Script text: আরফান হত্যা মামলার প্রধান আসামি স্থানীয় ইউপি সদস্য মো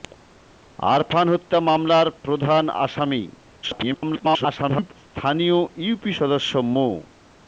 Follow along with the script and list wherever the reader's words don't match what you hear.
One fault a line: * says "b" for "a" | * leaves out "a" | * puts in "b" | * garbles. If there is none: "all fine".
* garbles